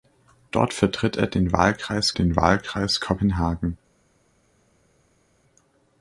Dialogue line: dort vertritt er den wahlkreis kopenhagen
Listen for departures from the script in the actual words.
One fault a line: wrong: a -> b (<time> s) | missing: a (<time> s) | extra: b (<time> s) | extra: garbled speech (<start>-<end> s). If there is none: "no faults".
extra: den wahlkreis (2.1 s)